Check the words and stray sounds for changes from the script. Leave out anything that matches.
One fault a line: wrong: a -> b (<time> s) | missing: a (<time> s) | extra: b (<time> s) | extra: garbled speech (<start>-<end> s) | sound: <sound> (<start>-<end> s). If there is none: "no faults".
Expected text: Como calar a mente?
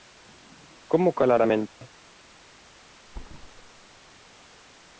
sound: dropout (1.7-1.8 s)
sound: thud (3.1-4.0 s)